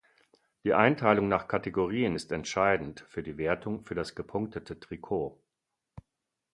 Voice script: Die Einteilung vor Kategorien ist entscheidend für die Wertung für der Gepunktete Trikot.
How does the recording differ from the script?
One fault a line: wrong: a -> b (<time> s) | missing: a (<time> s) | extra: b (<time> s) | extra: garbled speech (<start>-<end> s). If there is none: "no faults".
wrong: vor -> nach (1.3 s)
wrong: der -> das (4.0 s)